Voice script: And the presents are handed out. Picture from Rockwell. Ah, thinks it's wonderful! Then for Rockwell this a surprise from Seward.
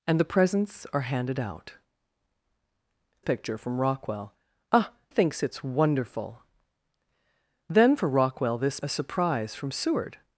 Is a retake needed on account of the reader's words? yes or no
no